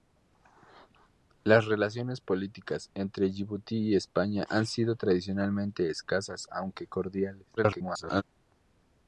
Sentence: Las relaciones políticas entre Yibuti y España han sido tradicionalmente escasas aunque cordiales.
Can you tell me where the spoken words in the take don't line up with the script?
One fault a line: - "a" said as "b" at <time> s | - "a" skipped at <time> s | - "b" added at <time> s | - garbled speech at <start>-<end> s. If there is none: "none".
- garbled speech at 7.6-8.2 s